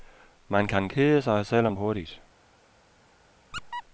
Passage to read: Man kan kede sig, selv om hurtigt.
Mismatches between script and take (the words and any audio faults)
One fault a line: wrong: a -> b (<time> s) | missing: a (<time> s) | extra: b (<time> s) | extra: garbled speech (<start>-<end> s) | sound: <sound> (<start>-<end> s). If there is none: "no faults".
sound: squeak (3.5-3.8 s)